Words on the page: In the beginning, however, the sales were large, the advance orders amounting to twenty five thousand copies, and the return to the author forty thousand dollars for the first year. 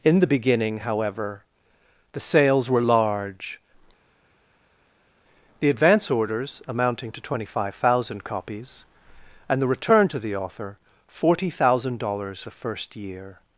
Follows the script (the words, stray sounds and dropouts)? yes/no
no